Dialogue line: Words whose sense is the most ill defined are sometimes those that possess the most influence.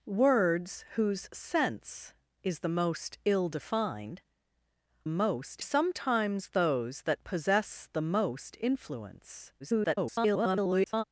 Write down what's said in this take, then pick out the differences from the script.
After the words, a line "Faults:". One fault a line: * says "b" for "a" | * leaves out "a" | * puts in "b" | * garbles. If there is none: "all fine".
Words whose sense is the most ill defined most sometimes those that possess the most influence. [garbled]
Faults:
* says "most" for "are"
* garbles